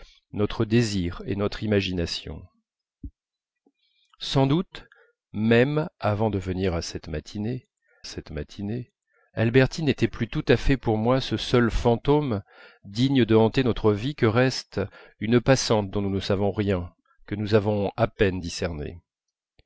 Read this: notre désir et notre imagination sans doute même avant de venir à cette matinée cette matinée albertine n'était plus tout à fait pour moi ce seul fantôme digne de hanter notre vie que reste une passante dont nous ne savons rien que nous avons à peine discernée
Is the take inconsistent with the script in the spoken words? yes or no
no